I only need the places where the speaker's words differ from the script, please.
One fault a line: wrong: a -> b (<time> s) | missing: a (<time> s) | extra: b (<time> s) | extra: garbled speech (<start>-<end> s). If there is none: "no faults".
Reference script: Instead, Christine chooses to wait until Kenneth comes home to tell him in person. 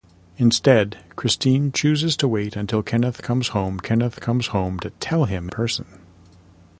extra: Kenneth comes home (3.8 s)
missing: in (5.5 s)